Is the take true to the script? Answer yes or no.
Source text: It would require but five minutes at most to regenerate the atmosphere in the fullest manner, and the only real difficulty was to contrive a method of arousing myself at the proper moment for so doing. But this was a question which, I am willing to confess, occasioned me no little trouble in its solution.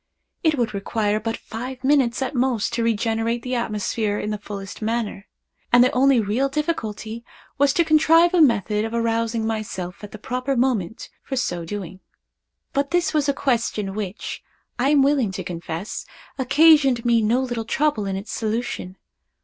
yes